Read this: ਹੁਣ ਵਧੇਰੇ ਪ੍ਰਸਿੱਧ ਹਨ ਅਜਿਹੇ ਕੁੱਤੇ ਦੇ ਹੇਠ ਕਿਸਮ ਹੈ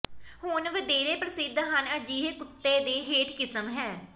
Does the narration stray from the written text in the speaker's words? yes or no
no